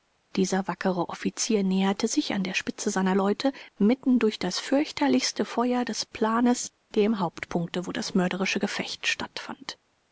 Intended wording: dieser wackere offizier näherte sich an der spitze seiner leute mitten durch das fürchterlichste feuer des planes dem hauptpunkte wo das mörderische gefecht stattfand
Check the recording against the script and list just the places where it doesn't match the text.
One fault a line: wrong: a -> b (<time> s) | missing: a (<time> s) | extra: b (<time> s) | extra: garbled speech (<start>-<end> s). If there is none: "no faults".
no faults